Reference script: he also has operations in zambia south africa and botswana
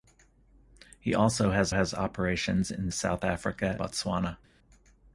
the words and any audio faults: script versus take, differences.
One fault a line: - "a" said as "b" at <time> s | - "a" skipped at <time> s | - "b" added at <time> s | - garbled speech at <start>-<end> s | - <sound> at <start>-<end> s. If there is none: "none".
- "has" added at 1.7 s
- "zambia" skipped at 2.9 s
- "and" skipped at 3.8 s